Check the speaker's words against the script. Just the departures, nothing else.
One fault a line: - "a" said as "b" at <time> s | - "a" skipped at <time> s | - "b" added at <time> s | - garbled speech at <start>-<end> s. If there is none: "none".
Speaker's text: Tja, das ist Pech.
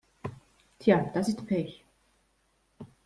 none